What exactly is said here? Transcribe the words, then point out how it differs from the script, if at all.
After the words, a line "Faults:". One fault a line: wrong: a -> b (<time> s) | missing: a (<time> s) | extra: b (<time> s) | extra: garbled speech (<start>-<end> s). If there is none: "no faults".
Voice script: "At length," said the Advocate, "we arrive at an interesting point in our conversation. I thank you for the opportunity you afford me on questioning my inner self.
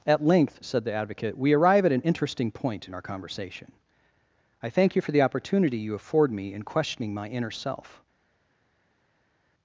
"At length," said the Advocate, "we arrive at an interesting point in our conversation. I thank you for the opportunity you afford me in questioning my inner self.
Faults:
wrong: on -> in (6.5 s)